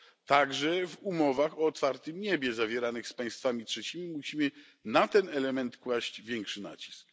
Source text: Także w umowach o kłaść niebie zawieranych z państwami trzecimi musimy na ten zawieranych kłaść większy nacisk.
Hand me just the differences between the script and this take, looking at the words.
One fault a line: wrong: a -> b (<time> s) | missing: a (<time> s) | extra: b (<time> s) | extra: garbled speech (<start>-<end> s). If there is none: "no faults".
wrong: kłaść -> otwartym (1.7 s)
wrong: zawieranych -> element (5.3 s)